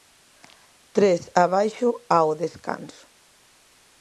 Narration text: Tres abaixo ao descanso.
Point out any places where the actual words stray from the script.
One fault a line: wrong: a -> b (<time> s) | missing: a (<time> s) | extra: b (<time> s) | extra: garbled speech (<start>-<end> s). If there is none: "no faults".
no faults